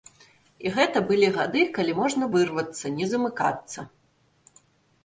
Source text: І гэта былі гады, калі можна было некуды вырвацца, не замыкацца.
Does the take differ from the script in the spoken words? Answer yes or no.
yes